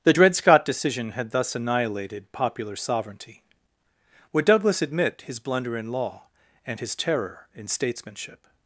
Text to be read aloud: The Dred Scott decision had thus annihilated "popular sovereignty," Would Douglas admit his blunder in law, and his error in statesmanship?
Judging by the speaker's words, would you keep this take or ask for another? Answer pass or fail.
fail